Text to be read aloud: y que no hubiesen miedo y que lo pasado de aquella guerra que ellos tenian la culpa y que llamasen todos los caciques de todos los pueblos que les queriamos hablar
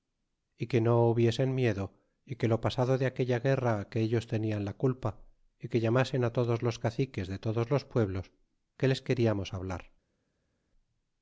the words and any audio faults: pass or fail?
pass